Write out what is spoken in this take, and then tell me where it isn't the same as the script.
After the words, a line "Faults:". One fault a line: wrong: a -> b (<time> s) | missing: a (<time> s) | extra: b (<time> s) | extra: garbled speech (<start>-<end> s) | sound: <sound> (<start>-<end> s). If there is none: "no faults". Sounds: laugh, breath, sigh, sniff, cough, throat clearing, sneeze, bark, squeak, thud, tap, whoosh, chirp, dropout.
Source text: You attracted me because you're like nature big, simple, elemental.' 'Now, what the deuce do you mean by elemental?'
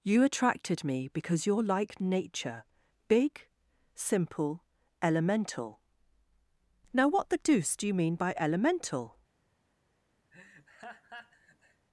You attracted me because you're like nature big, simple, elemental.' 'Now, what the deuce do you mean by elemental?'
Faults:
sound: laugh (10.3-11.9 s)